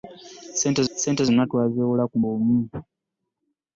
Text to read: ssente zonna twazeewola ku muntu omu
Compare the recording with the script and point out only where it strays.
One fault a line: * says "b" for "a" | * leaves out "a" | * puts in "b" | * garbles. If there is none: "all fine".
* puts in "ssente"
* leaves out "muntu"